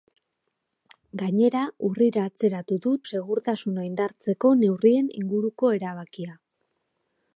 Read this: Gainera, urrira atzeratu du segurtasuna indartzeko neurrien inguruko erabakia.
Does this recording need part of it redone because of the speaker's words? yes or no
no